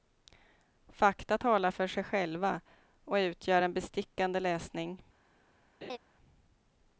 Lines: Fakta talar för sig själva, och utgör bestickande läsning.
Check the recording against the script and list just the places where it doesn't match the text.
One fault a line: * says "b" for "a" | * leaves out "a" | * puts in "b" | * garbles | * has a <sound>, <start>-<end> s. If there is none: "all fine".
* puts in "en"
* has a laugh, 5.8-6.0 s